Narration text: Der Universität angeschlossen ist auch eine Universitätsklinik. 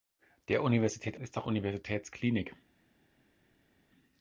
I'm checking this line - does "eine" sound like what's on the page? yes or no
no